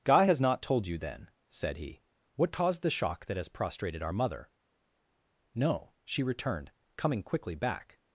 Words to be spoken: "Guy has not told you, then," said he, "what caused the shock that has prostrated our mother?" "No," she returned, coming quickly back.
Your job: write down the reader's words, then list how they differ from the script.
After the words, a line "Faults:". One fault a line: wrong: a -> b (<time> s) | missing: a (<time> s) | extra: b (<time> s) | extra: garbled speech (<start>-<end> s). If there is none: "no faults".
"Guy has not told you, then," said he, "what caused the shock that has prostrated our mother?" "No," she returned, coming quickly back.
Faults:
no faults